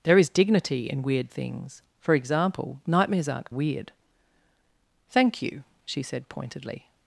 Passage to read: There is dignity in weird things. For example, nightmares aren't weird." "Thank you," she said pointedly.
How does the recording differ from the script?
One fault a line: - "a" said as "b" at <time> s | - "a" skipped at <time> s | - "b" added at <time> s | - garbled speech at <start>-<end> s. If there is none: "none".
none